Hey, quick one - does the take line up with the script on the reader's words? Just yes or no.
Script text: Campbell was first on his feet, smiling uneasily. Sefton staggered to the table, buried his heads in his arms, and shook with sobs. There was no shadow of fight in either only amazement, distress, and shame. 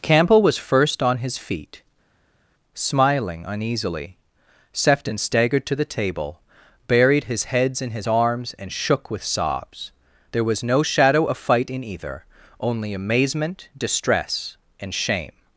yes